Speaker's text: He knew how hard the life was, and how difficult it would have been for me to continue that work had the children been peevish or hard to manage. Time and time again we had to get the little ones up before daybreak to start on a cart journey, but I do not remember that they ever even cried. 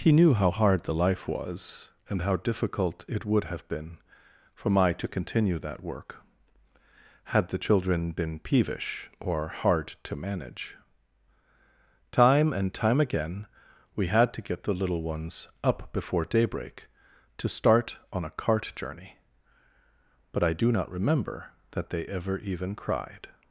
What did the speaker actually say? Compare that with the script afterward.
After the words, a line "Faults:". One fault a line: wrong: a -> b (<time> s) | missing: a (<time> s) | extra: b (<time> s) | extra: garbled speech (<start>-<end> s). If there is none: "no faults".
He knew how hard the life was, and how difficult it would have been for my to continue that work had the children been peevish or hard to manage. Time and time again we had to get the little ones up before daybreak to start on a cart journey, but I do not remember that they ever even cried.
Faults:
wrong: me -> my (4.7 s)